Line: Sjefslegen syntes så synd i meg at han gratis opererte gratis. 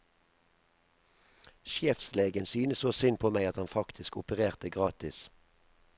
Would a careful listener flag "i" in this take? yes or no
yes